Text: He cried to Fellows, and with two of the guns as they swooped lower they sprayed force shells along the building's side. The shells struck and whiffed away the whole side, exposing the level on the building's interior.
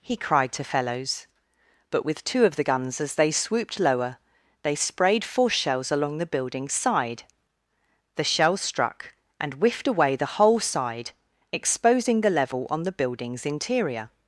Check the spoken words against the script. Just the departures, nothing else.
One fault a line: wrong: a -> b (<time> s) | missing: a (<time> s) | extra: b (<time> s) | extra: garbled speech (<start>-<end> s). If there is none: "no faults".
wrong: and -> but (1.9 s)